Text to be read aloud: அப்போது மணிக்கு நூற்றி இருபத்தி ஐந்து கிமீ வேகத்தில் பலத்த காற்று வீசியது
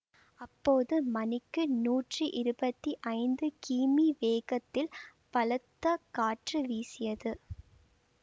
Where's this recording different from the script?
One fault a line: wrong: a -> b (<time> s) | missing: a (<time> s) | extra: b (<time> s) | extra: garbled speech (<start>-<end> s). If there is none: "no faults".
no faults